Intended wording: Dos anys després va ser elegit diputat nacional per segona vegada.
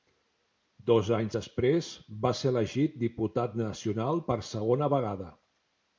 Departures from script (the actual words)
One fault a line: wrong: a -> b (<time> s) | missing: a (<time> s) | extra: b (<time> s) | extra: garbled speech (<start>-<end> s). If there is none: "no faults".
no faults